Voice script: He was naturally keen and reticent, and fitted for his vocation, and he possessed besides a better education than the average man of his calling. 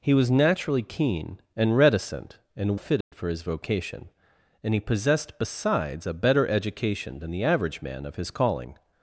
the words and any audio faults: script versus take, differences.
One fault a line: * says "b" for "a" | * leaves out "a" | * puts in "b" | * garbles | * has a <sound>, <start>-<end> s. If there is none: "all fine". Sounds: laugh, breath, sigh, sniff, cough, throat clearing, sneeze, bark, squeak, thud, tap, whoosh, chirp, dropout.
* has a dropout, 3.0-3.1 s